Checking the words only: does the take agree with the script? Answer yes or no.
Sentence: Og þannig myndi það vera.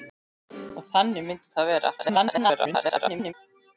no